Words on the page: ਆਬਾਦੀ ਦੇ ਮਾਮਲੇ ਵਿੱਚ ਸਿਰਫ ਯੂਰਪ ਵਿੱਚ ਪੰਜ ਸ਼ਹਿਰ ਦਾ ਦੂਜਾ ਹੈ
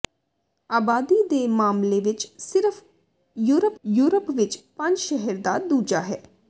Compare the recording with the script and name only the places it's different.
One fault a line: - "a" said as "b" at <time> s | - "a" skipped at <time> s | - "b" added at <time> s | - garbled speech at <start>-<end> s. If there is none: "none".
- "ਯੂਰਪ" added at 3.9 s